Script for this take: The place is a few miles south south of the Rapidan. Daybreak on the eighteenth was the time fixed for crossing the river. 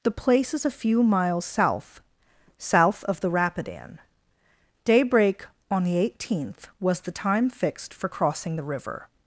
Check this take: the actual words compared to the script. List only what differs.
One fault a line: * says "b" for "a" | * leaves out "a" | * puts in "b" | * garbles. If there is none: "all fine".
all fine